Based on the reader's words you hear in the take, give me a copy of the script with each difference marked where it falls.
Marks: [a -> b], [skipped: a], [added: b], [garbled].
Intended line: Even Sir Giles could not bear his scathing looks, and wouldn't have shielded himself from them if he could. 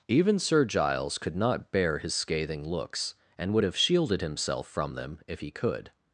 Even Sir Giles could not bear his scathing looks, and [wouldn't -> would] have shielded himself from them if he could.